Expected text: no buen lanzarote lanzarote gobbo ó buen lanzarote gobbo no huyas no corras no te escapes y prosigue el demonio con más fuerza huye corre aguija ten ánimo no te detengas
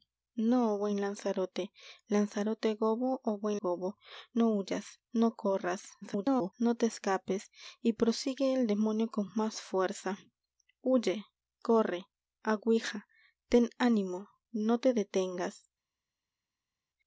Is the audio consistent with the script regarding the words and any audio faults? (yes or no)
no